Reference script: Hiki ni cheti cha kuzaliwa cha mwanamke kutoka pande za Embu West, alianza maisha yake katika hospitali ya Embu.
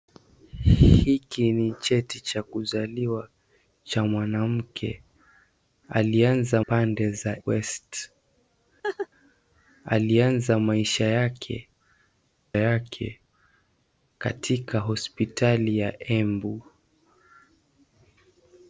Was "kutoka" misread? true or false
true